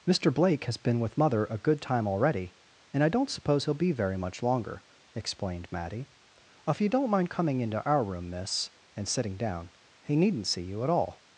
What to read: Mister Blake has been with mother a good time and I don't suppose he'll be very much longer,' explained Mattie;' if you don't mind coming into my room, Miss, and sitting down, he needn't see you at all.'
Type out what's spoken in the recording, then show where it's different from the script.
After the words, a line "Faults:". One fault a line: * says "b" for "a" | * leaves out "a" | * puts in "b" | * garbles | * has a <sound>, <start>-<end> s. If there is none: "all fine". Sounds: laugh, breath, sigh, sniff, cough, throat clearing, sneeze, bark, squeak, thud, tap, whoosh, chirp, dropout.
Mister Blake has been with mother a good time already, and I don't suppose he'll be very much longer,' explained Mattie;' if you don't mind coming into our room, Miss, and sitting down, he needn't see you at all.'
Faults:
* puts in "already"
* says "our" for "my"